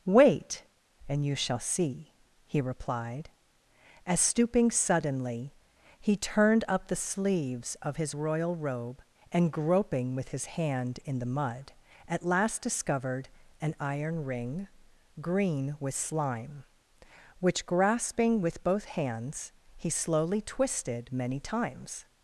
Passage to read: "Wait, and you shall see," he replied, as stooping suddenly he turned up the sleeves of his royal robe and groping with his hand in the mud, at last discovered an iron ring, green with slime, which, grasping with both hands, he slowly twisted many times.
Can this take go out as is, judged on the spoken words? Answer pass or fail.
pass